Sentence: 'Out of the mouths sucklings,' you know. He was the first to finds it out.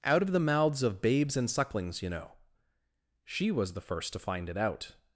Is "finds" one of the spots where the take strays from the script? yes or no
yes